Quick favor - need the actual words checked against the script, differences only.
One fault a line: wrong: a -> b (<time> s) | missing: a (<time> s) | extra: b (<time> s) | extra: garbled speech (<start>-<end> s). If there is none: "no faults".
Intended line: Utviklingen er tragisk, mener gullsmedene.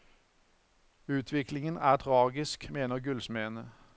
no faults